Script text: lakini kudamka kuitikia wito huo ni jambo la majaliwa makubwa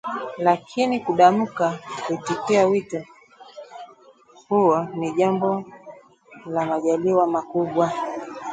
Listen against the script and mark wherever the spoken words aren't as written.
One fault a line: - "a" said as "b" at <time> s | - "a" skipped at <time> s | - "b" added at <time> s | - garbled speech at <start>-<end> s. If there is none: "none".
none